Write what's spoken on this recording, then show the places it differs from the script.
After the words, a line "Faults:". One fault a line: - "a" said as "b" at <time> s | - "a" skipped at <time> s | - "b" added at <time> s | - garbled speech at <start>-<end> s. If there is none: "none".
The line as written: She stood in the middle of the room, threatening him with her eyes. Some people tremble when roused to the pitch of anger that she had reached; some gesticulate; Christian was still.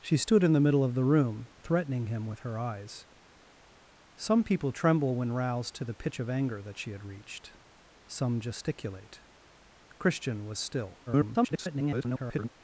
She stood in the middle of the room, threatening him with her eyes. Some people tremble when roused to the pitch of anger that she had reached; some gesticulate; Christian was still. [garbled]
Faults:
- garbled speech at 11.1-12.5 s